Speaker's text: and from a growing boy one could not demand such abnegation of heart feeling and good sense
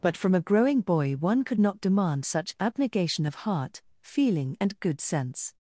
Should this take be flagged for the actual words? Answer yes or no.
yes